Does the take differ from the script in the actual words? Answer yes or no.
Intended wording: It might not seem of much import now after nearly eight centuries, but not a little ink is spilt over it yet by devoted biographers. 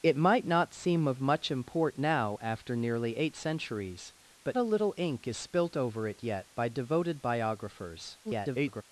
yes